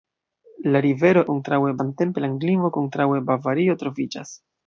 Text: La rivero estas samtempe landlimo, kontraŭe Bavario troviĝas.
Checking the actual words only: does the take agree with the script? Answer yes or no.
no